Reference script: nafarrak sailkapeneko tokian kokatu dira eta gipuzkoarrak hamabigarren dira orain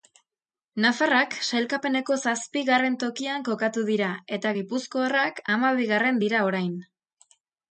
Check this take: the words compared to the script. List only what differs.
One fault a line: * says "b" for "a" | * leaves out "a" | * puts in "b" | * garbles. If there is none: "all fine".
* puts in "zazpigarren"